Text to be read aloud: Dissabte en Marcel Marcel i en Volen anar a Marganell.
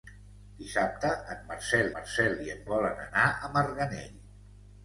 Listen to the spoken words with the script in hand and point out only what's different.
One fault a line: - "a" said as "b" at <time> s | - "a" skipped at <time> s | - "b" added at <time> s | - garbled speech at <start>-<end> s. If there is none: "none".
none